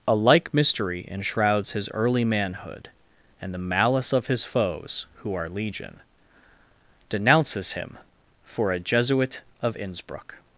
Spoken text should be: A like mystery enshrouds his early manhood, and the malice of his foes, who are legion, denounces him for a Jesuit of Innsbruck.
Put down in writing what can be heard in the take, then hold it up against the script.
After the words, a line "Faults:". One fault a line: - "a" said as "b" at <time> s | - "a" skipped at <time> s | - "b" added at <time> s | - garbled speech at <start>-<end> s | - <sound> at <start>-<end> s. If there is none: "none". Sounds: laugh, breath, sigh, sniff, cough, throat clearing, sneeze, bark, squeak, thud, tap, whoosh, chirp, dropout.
A like mystery enshrouds his early manhood, and the malice of his foes, who are legion, denounces him for a Jesuit of Innsbruck.
Faults:
none